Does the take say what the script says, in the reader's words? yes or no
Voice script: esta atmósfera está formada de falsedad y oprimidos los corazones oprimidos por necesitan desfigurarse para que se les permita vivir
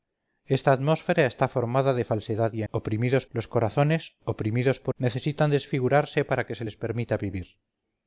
yes